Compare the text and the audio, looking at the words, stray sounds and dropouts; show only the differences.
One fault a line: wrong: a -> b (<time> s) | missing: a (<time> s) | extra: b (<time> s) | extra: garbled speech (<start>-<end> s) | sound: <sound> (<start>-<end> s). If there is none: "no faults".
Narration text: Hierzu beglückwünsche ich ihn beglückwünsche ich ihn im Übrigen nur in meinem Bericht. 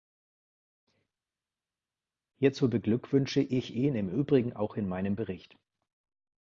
missing: beglückwünsche ich ihn (4.0 s)
wrong: nur -> auch (4.5 s)